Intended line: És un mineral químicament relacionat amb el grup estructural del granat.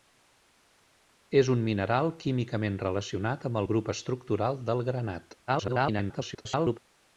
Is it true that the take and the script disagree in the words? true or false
true